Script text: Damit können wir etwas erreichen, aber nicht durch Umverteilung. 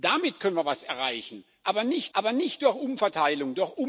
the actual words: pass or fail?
fail